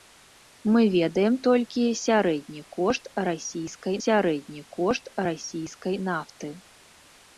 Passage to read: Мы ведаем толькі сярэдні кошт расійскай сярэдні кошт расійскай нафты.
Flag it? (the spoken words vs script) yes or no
no